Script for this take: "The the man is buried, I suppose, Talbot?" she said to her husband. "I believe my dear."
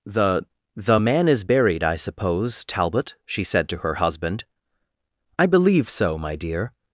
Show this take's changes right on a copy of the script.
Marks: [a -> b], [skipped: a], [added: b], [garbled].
"The the man is buried, I suppose, Talbot?" she said to her husband. "I believe [added: so] my dear."